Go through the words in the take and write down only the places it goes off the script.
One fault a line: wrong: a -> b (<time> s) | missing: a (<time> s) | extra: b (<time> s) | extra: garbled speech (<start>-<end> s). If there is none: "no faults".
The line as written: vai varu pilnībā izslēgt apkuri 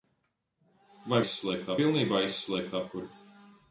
wrong: varu -> izslēgt (1.2 s)